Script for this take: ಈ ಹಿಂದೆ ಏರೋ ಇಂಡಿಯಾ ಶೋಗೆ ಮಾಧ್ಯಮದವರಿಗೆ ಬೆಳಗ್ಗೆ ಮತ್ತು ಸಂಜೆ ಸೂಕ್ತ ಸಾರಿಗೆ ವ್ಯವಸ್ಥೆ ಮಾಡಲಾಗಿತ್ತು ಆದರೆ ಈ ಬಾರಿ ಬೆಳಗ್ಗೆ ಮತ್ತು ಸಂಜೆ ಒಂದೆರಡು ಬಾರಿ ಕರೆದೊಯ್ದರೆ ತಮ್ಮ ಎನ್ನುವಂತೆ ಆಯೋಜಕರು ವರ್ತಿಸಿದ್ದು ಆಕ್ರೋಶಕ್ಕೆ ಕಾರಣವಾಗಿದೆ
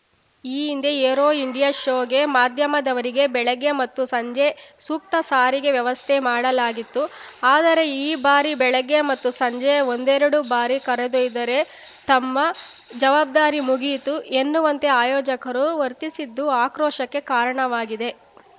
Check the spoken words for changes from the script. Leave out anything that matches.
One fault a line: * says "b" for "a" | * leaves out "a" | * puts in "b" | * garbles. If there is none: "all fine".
* puts in "ಜವಾಬ್ದಾರಿ ಮುಗಿಯಿತು"